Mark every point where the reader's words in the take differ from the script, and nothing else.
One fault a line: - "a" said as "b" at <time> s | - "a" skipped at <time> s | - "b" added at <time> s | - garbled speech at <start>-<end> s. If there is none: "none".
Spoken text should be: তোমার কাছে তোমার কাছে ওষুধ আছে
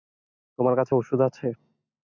- "তোমার কাছে" skipped at 0.9 s